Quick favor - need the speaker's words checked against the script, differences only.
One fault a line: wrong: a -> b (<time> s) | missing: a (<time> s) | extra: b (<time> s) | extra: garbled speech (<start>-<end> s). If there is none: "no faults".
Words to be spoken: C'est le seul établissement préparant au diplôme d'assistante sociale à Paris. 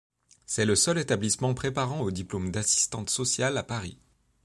no faults